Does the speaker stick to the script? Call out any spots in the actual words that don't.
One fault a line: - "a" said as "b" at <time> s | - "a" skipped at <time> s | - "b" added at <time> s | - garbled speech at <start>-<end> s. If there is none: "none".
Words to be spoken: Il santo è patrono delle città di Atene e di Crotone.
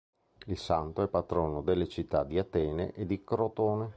none